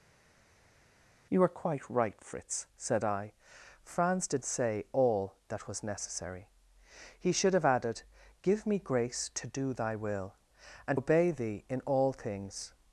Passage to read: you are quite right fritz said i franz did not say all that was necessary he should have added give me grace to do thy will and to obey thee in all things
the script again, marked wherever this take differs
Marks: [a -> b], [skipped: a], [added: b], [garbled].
you are quite right fritz said i franz did [skipped: not] say all that was necessary he should have added give me grace to do thy will and [skipped: to] obey thee in all things